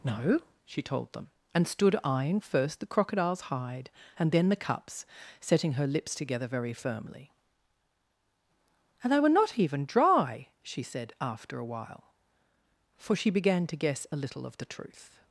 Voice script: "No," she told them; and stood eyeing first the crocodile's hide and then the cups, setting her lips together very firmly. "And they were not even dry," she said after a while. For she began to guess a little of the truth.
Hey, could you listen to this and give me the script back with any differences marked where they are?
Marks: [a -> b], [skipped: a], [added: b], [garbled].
"No," she told them; and stood eyeing first the crocodile's hide and then the cups, setting her lips together very firmly. "And they were not even dry," she said after a while. For she began to guess a little of the truth.